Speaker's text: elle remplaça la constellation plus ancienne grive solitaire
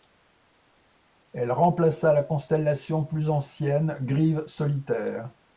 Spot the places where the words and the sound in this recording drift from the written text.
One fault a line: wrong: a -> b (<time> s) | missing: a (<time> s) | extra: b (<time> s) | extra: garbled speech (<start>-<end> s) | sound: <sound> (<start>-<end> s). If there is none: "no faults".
no faults